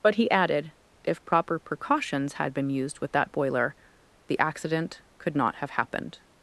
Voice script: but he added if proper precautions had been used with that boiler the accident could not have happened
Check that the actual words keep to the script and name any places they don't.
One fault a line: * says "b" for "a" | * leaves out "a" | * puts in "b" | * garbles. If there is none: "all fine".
all fine